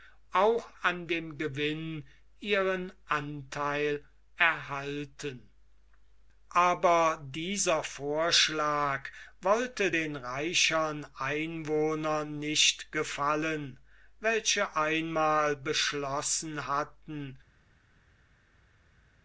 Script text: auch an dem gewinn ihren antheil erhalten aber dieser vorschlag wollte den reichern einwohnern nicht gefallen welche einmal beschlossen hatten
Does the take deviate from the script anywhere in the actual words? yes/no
no